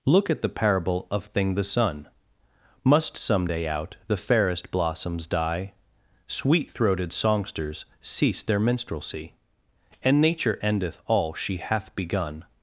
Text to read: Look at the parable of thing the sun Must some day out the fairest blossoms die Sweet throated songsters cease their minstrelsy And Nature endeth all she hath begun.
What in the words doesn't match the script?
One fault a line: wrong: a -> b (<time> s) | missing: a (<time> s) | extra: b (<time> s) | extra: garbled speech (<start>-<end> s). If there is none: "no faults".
no faults